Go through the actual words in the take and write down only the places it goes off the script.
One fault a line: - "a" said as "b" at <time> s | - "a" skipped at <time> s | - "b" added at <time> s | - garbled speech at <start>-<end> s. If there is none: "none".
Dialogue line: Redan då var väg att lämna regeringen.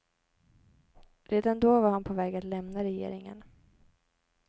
- "han på" added at 1.9 s